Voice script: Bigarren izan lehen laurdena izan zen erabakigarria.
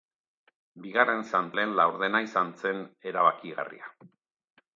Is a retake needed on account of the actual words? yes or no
no